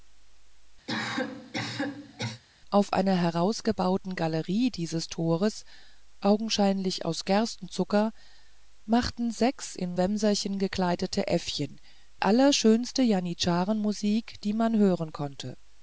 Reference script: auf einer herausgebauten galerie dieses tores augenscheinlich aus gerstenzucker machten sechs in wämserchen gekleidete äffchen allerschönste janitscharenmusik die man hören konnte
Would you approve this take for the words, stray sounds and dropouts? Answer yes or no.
no